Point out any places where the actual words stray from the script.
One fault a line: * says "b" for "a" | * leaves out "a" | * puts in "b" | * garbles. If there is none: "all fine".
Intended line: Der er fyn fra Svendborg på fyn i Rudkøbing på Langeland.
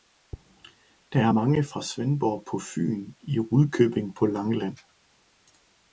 * says "mange" for "fyn"